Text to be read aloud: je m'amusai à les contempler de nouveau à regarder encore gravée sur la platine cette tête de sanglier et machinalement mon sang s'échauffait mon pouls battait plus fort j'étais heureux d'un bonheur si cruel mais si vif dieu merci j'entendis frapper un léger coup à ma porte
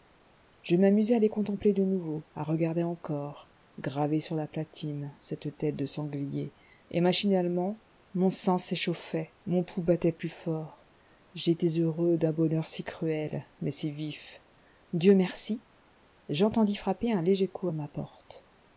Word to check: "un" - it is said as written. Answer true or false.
true